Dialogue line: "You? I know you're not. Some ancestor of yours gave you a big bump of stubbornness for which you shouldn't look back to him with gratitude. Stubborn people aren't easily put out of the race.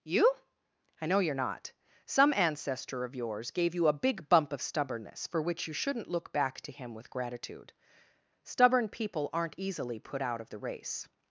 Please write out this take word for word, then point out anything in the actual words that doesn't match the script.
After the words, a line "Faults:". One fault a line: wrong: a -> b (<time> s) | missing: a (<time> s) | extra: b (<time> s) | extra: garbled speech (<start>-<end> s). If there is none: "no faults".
"You? I know you're not. Some ancestor of yours gave you a big bump of stubbornness for which you shouldn't look back to him with gratitude. Stubborn people aren't easily put out of the race.
Faults:
no faults